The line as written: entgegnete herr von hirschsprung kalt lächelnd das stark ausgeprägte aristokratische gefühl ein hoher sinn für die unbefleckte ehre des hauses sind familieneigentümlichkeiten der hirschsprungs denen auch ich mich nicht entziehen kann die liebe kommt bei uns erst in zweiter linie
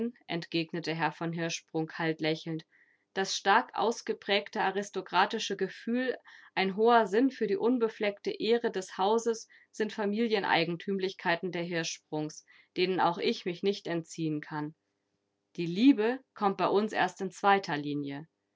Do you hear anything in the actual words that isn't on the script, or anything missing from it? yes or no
no